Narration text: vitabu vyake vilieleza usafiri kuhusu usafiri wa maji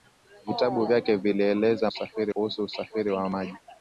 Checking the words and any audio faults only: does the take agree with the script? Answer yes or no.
yes